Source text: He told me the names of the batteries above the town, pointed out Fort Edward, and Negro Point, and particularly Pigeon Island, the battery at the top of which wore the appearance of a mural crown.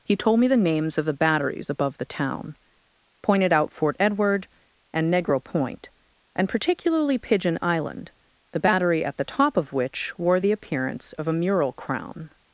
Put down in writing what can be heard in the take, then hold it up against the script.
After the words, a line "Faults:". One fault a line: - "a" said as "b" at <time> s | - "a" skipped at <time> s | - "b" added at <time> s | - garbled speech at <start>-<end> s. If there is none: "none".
He told me the names of the batteries above the town, pointed out Fort Edward, and Negro Point, and particularly Pigeon Island, the battery at the top of which wore the appearance of a mural crown.
Faults:
none